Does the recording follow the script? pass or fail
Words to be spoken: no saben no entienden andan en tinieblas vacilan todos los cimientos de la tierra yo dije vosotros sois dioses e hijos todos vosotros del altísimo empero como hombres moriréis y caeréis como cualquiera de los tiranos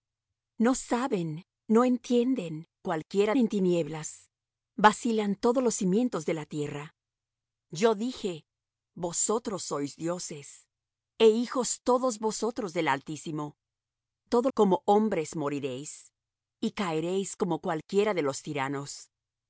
fail